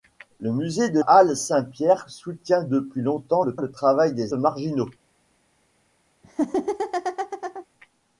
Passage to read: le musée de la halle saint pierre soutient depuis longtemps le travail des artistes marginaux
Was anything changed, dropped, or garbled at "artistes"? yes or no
yes